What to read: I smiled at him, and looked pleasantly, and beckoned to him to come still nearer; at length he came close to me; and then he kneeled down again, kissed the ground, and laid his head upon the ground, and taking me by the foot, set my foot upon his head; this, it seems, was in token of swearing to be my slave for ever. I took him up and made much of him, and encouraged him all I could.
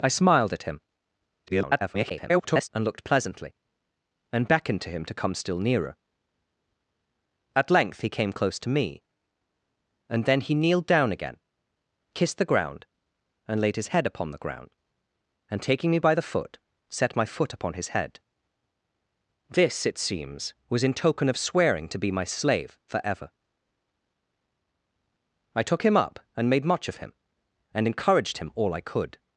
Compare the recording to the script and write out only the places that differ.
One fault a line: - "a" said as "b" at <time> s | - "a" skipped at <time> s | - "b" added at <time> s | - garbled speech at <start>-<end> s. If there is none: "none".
- garbled speech at 1.5-2.7 s